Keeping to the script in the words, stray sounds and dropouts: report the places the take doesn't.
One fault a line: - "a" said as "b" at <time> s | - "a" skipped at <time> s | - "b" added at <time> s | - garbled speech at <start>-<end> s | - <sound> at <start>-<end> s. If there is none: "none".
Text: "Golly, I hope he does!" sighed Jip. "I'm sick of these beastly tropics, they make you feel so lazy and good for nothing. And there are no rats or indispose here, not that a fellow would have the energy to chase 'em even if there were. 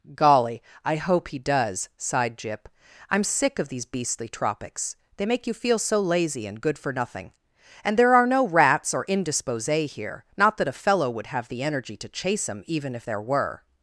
none